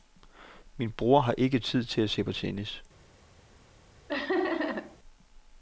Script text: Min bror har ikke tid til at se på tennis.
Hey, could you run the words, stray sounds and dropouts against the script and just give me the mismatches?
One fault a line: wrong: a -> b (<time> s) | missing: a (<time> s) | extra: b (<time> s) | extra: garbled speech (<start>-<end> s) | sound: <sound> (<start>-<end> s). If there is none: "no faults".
sound: laugh (4.1-5.0 s)